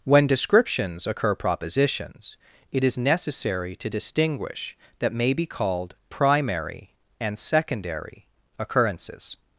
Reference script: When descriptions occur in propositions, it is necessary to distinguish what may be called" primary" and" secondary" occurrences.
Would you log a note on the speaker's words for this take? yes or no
yes